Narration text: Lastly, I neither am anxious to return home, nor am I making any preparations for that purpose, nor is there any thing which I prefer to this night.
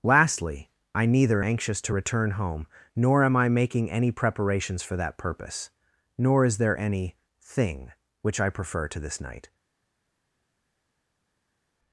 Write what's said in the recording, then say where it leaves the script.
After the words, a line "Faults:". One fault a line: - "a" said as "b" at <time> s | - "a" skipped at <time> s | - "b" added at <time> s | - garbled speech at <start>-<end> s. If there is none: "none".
Lastly, I neither anxious to return home, nor am I making any preparations for that purpose, nor is there any thing which I prefer to this night.
Faults:
- "am" skipped at 1.4 s